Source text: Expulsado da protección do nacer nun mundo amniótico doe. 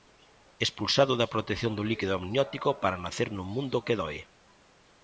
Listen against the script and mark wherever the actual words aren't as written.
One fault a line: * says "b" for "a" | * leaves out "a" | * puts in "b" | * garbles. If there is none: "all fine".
* puts in "líquido amniótico para"
* says "que" for "amniótico"